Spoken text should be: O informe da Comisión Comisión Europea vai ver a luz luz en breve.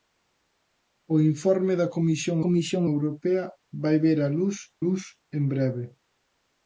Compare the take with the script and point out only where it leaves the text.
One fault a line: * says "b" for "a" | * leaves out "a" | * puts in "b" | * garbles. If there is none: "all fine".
all fine